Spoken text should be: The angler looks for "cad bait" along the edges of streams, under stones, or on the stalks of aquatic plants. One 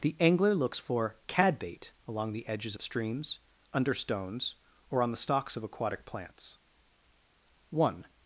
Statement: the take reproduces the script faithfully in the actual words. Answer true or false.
true